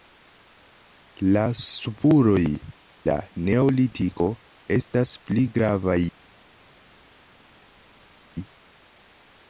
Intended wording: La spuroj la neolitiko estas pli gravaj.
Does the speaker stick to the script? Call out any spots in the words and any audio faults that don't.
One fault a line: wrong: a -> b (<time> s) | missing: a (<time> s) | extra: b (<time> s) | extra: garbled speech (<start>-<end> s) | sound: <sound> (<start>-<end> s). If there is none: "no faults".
no faults